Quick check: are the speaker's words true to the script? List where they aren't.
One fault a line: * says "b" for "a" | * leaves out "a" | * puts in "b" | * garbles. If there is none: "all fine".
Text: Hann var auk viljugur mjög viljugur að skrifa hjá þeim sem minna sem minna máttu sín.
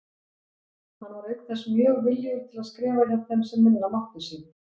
* says "þess" for "viljugur"
* puts in "til"
* leaves out "sem minna"